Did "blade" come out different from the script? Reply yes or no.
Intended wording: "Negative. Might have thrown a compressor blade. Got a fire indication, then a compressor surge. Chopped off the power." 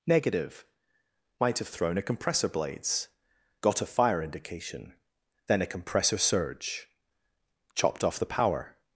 yes